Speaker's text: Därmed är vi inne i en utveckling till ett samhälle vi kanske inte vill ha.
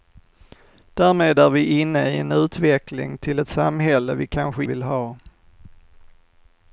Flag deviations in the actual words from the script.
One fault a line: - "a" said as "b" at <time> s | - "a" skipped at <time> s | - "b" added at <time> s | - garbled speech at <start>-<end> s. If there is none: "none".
- "inte" skipped at 4.7 s